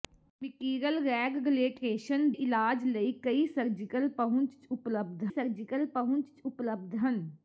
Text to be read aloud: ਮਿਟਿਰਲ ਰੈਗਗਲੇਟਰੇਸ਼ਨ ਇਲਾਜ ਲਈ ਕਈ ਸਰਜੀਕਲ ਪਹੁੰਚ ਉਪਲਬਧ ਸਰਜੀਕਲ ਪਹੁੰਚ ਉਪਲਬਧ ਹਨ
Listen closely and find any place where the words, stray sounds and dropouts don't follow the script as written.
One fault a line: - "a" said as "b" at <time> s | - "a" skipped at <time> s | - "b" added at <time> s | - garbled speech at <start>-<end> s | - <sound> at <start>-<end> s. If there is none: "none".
none